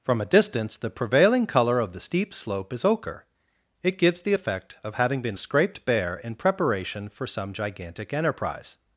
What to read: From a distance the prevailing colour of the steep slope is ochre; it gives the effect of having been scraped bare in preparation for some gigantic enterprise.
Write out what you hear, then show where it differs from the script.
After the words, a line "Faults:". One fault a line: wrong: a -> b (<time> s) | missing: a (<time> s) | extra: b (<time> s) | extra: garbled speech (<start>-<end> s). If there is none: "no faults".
From a distance the prevailing colour of the steep slope is ochre; it gives the effect of having been scraped bare in preparation for some gigantic enterprise.
Faults:
no faults